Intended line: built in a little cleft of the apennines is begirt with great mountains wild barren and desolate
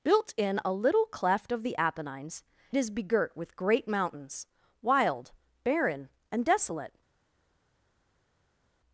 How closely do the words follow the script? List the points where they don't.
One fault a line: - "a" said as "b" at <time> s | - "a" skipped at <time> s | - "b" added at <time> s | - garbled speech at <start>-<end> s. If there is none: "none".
none